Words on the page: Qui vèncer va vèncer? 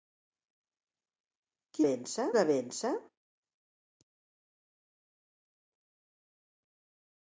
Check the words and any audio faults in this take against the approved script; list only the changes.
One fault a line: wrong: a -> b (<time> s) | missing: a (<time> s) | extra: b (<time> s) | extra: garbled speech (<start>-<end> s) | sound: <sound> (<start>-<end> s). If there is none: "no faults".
no faults